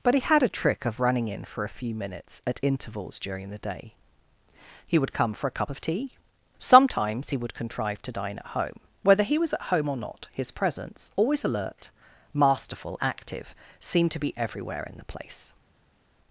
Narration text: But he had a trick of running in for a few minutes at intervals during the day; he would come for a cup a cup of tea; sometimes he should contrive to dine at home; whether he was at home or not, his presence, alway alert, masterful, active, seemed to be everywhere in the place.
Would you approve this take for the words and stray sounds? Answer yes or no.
no